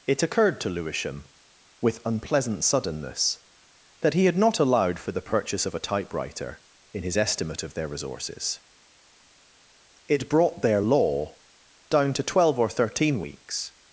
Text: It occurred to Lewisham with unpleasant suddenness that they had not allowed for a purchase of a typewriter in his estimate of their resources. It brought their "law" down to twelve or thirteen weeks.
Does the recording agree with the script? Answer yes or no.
no